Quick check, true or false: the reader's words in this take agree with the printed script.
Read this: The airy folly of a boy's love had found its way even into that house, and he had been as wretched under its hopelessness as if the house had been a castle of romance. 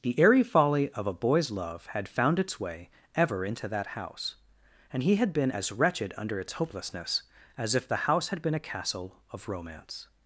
false